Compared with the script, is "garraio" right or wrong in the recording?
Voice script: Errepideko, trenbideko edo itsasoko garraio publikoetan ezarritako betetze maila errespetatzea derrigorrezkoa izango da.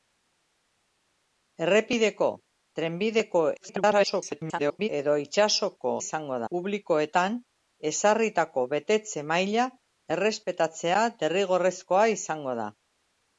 wrong